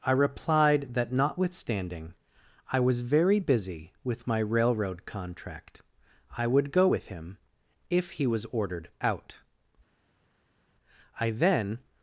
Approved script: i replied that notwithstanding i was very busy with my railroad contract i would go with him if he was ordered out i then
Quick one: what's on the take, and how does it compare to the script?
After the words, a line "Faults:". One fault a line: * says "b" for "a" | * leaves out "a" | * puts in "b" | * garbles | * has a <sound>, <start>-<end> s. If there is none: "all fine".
i replied that notwithstanding i was very busy with my railroad contract i would go with him if he was ordered out i then
Faults:
all fine